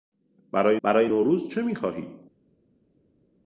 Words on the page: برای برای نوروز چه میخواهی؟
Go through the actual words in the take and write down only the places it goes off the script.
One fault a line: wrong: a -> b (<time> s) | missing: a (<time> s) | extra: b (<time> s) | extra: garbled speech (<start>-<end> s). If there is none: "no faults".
no faults